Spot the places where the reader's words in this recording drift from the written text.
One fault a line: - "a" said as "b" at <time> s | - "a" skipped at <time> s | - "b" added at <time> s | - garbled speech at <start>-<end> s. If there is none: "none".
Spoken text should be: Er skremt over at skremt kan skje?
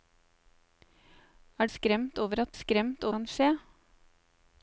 none